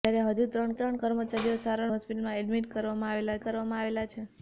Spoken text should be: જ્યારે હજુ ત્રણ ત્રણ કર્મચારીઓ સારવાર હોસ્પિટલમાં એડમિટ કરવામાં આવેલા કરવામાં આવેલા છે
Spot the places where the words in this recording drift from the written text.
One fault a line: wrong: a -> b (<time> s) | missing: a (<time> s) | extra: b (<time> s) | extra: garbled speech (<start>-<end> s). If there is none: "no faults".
no faults